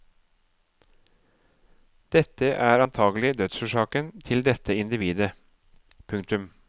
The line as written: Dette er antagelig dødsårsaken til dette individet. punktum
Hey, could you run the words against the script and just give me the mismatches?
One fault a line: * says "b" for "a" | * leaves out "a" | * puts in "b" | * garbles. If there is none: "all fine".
all fine